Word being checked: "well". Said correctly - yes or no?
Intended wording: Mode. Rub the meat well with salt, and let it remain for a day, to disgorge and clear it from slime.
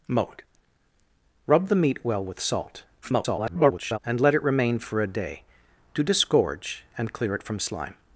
yes